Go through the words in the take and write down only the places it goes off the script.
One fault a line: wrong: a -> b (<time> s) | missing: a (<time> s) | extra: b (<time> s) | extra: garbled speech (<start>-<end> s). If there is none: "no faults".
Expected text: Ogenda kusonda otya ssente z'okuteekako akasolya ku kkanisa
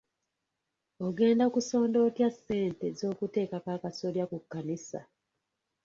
no faults